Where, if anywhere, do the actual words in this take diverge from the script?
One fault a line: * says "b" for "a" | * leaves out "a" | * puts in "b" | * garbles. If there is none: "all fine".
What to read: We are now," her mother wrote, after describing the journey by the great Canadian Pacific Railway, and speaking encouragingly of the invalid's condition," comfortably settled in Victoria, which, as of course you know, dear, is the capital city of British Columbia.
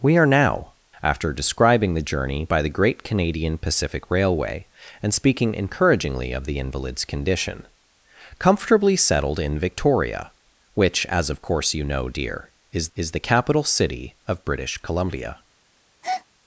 * leaves out "her mother wrote"
* puts in "is"